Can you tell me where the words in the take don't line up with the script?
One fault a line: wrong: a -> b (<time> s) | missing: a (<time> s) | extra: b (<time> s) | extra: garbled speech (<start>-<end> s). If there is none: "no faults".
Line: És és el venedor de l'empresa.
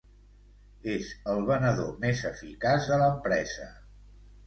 missing: és (1.1 s)
extra: més eficaç (2.0 s)